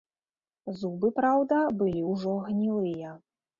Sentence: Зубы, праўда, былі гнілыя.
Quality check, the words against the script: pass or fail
fail